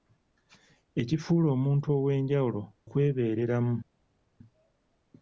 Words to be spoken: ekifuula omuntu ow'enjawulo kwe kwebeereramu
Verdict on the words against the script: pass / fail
fail